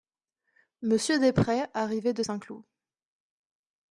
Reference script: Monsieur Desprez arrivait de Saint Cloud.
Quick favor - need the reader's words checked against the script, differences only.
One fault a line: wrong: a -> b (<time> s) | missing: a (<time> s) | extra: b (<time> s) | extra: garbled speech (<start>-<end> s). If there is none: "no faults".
no faults